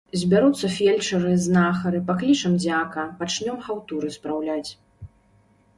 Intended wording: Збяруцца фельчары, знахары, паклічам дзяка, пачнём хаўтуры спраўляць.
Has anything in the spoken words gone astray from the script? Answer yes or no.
no